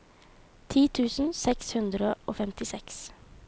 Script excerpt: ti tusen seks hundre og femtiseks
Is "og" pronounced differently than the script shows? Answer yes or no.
no